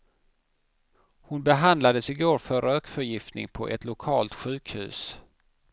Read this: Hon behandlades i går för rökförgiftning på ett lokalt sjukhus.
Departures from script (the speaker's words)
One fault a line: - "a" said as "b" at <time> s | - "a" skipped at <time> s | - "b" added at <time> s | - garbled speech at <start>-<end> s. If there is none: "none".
none